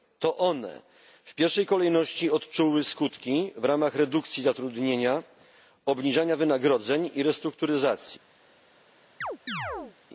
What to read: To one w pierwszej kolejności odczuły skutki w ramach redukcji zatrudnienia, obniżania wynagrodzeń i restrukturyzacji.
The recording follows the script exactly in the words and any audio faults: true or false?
false